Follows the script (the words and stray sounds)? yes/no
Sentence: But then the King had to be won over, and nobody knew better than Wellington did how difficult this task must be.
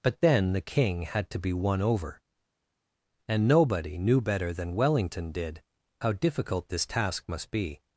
yes